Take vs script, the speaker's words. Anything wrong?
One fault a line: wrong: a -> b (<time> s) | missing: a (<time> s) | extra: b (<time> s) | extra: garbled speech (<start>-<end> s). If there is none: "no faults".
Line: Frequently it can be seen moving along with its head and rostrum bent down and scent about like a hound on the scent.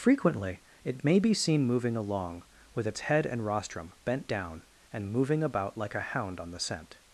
wrong: can -> may (1.0 s)
wrong: scent -> moving (5.1 s)